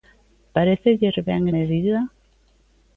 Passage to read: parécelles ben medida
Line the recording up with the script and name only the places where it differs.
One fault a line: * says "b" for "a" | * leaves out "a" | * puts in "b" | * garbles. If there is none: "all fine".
all fine